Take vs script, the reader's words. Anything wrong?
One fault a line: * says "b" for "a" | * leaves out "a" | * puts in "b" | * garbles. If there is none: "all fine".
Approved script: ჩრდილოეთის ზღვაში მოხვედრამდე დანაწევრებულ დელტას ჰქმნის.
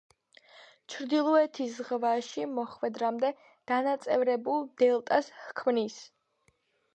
all fine